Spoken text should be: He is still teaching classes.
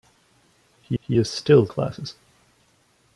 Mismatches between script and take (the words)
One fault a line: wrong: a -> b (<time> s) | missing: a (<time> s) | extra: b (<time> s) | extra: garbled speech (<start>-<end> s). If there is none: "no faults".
extra: he (1.0 s)
missing: teaching (1.7 s)